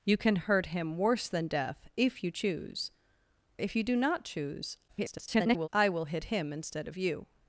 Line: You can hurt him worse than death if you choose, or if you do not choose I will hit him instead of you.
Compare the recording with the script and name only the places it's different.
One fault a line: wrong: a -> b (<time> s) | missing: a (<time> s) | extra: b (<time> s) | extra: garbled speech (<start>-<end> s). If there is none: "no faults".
missing: or (2.9 s)
extra: garbled speech (4.9-5.7 s)